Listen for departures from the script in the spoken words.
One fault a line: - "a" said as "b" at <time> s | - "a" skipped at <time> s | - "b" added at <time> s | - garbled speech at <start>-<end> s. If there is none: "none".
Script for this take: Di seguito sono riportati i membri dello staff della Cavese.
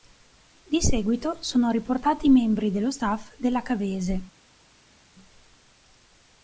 none